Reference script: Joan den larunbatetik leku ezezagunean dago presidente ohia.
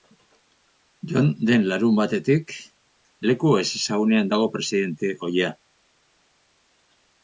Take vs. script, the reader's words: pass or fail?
pass